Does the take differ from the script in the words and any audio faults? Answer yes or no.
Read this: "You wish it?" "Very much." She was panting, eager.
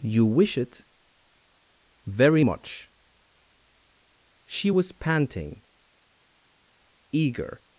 no